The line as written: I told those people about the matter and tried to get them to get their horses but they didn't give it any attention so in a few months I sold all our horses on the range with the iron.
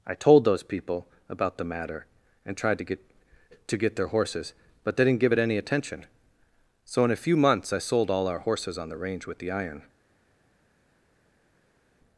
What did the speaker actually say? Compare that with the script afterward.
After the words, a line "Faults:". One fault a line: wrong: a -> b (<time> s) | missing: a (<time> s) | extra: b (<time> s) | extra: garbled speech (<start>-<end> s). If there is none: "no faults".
I told those people about the matter and tried to get to get their horses but they didn't give it any attention so in a few months I sold all our horses on the range with the iron.
Faults:
missing: them (3.0 s)